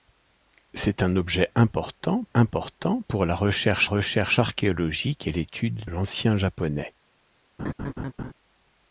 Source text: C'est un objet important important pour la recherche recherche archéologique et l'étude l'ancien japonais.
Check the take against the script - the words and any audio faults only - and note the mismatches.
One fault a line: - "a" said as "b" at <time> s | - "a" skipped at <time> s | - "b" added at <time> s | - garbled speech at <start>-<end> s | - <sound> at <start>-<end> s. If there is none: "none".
- laugh at 7.6-8.3 s